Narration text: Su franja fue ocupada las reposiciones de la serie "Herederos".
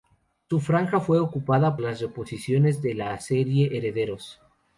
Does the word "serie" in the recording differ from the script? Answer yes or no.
no